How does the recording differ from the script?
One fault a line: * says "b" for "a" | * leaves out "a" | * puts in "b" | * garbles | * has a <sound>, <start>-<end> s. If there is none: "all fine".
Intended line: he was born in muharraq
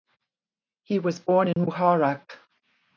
* has a dropout, 1.5-1.6 s